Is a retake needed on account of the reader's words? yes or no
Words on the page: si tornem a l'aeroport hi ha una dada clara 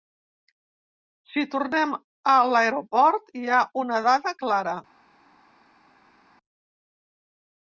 no